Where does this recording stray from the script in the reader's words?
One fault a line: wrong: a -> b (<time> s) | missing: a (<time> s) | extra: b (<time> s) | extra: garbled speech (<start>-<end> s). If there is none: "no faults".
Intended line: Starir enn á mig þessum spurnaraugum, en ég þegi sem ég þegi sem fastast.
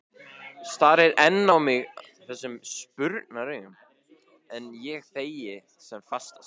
missing: ég þegi sem (6.1 s)